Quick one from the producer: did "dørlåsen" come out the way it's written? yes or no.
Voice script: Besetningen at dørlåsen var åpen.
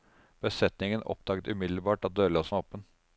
yes